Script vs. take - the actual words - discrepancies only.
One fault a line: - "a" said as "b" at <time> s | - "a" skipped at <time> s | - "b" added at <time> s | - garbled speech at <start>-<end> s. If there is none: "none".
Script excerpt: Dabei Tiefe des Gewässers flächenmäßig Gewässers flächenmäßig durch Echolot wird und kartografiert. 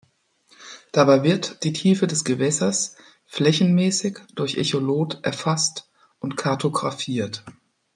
- "wird die" added at 1.2 s
- "Gewässers flächenmäßig" skipped at 4.2 s
- "wird" said as "erfasst" at 5.2 s